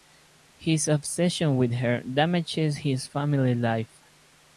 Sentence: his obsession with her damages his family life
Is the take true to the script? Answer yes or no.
yes